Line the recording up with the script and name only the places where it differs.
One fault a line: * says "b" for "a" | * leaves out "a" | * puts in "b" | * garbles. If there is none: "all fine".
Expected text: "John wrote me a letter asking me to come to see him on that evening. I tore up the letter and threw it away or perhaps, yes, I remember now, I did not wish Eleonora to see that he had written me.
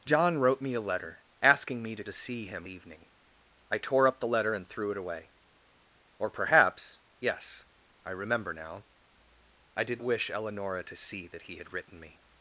* leaves out "come"
* leaves out "on that"
* leaves out "not"